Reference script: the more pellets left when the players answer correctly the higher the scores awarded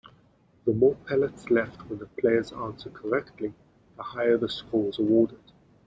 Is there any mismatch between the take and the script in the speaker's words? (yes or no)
no